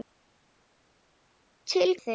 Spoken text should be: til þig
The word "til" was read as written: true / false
true